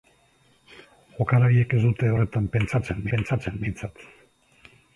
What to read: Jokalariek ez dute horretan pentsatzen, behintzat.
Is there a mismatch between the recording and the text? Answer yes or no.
yes